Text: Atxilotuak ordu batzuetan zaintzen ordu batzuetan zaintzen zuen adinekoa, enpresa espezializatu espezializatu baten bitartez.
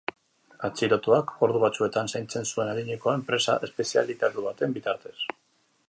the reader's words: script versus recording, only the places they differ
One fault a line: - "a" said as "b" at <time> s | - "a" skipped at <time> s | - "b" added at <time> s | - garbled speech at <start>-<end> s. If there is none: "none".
- "ordu batzuetan zaintzen" skipped at 2.5 s
- "espezializatu" skipped at 4.5 s